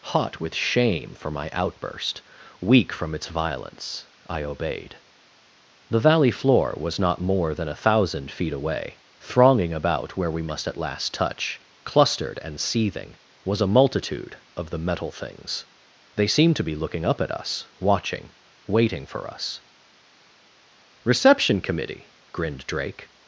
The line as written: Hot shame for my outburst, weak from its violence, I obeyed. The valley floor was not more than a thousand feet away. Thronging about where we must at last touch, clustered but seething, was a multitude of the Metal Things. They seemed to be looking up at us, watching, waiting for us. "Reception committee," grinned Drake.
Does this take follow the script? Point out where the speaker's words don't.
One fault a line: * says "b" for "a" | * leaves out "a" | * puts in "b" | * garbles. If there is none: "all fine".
* puts in "with"
* says "and" for "but"